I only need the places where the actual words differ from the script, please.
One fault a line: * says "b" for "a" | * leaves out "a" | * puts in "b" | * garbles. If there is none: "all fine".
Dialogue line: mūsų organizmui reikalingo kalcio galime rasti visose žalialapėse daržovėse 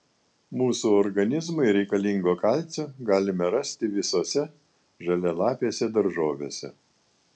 all fine